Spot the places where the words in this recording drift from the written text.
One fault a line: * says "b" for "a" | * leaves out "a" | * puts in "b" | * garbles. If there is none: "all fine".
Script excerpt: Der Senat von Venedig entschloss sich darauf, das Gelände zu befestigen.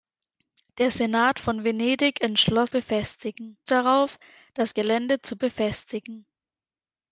* says "befestigen" for "sich"